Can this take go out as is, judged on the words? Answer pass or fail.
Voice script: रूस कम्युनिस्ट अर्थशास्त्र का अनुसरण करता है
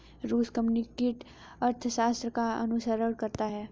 pass